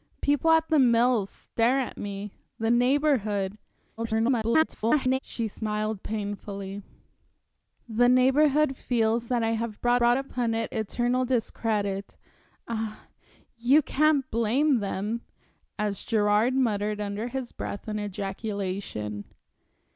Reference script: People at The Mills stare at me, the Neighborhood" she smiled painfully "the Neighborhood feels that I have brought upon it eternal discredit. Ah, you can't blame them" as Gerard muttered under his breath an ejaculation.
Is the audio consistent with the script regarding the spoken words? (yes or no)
no